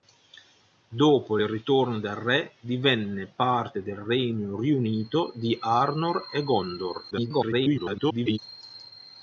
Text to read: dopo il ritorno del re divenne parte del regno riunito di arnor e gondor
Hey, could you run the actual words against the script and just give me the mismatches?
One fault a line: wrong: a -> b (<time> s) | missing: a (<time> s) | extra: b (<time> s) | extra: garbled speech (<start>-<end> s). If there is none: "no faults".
extra: garbled speech (7.1-8.4 s)